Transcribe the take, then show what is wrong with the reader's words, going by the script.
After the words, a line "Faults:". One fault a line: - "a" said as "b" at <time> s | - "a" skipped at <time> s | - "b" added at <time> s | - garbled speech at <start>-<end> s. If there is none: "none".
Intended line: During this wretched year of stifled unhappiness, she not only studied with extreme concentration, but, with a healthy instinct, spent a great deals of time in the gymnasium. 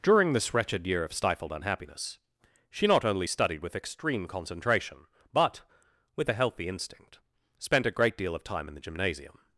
During this wretched year of stifled unhappiness, she not only studied with extreme concentration, but, with a healthy instinct, spent a great deal of time in the gymnasium.
Faults:
- "deals" said as "deal" at 8.2 s